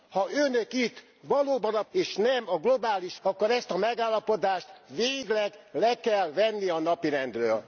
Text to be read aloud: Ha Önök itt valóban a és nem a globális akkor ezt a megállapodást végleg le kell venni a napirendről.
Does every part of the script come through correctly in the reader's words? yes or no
yes